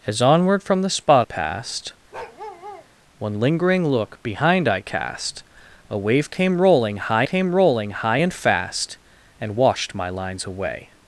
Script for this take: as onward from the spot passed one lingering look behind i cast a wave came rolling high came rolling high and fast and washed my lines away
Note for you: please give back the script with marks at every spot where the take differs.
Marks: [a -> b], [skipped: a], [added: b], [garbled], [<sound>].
as onward from the spot passed [bark] one lingering look behind i cast a wave came rolling high came rolling high and fast and washed my lines away